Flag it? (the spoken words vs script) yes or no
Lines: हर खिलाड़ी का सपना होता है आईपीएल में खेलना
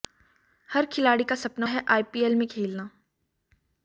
yes